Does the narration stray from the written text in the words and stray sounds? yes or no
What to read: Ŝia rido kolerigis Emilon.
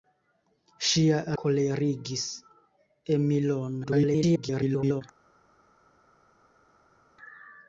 yes